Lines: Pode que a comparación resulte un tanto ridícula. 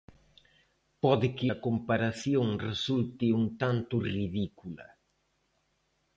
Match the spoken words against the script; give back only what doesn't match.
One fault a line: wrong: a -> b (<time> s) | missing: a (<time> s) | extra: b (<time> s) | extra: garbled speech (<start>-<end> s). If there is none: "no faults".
no faults